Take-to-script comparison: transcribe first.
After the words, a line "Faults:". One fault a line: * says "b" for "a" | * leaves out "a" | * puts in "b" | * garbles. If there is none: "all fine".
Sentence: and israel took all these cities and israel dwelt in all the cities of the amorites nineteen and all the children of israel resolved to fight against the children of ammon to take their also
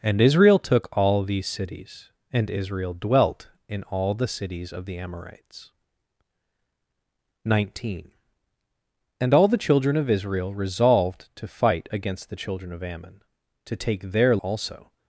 and israel took all these cities and israel dwelt in all the cities of the amorites nineteen and all the children of israel resolved to fight against the children of ammon to take their also
Faults:
all fine